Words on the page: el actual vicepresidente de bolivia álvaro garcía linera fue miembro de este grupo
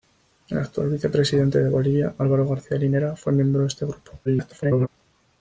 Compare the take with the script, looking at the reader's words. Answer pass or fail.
fail